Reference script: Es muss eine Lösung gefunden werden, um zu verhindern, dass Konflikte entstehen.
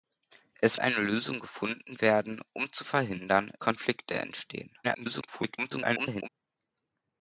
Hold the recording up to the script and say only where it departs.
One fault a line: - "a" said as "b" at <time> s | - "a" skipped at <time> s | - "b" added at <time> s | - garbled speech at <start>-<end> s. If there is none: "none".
- "muss" skipped at 0.8 s
- "dass" skipped at 3.5 s
- garbled speech at 4.8-6.3 s